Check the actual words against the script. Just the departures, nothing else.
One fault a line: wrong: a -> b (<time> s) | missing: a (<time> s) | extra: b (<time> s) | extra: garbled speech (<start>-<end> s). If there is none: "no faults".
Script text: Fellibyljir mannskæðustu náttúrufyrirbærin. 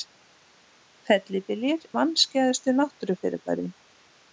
no faults